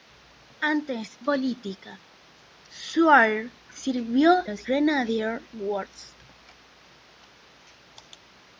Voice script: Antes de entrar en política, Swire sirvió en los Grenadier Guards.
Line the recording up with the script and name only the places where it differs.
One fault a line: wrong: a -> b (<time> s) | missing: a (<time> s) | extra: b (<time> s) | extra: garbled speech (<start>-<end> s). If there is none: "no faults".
missing: de entrar en (1.2 s)
missing: en (4.4 s)